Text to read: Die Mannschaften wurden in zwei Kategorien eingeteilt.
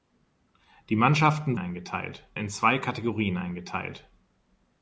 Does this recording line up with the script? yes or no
no